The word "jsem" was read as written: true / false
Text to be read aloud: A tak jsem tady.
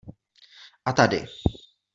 false